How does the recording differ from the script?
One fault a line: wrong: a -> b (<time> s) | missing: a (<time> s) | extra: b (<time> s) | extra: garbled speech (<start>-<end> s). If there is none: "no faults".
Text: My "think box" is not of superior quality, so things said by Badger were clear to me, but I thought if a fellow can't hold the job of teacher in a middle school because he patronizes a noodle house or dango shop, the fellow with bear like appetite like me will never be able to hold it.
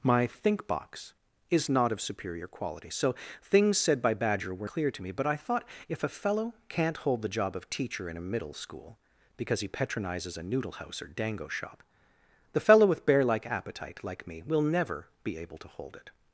no faults